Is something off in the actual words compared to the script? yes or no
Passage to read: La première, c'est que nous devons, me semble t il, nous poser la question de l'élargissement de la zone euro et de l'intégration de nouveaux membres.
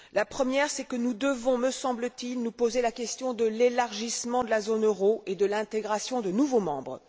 no